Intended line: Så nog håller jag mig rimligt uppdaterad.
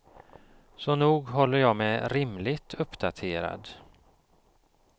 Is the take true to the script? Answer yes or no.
yes